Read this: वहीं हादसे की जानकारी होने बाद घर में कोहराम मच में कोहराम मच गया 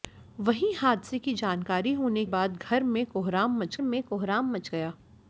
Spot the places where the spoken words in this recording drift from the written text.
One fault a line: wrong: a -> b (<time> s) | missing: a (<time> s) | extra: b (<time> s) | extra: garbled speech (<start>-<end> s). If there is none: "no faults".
no faults